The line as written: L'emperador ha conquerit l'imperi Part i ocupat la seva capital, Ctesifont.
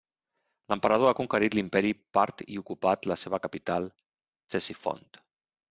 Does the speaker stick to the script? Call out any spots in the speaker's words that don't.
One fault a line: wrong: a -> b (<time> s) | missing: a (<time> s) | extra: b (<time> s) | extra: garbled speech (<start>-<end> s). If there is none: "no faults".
no faults